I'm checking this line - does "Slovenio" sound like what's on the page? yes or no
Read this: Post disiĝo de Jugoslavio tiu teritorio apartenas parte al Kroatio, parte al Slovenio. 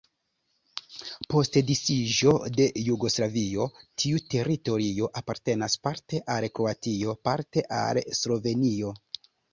yes